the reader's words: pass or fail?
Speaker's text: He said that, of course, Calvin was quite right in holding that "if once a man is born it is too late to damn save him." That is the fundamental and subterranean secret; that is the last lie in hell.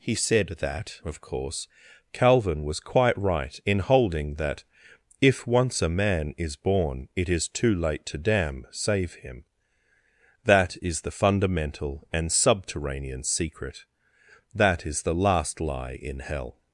pass